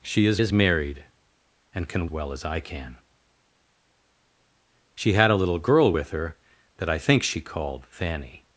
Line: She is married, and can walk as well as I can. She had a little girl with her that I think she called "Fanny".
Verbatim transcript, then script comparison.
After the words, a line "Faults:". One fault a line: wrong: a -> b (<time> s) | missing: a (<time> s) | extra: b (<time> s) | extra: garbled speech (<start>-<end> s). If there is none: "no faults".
She is is married, and can well as I can. She had a little girl with her that I think she called "Fanny".
Faults:
extra: is (0.4 s)
missing: walk as (2.1 s)